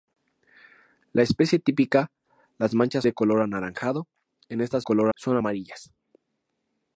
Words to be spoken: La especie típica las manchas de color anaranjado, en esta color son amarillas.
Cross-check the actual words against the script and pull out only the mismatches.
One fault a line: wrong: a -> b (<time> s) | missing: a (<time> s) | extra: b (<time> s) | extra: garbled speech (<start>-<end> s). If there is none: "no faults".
no faults